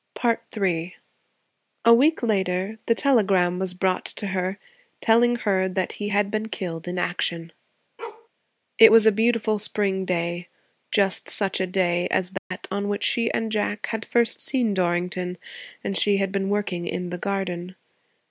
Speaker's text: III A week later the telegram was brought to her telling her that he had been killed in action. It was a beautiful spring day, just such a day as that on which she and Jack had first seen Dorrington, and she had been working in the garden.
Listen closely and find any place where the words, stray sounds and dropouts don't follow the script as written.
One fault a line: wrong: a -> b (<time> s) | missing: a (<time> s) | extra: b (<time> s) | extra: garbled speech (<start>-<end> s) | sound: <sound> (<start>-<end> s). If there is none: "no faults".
sound: bark (8.0-8.3 s)
sound: dropout (12.4-12.5 s)